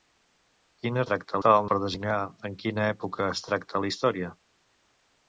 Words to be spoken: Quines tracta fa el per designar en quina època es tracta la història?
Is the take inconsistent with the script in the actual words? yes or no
no